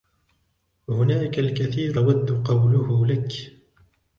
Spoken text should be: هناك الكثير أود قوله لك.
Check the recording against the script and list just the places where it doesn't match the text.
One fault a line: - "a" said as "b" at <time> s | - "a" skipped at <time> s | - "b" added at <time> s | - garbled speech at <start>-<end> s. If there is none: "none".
none